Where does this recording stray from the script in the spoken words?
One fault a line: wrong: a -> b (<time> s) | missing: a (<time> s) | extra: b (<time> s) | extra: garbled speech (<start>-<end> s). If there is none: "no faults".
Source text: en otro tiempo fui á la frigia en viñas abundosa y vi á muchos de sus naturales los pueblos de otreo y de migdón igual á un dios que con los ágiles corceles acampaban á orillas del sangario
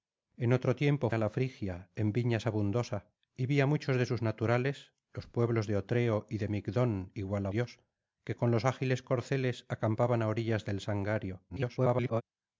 missing: fui (1.1 s)
missing: un (7.5 s)
extra: garbled speech (11.5-12.2 s)